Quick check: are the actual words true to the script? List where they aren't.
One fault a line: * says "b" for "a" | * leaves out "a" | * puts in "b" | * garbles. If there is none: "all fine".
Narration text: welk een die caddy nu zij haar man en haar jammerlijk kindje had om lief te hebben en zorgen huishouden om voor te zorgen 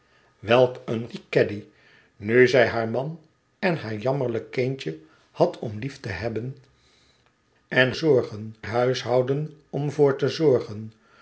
all fine